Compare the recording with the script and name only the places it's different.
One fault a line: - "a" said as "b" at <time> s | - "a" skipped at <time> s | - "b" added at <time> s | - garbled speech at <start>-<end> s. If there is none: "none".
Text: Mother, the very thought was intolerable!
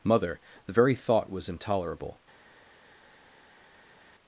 none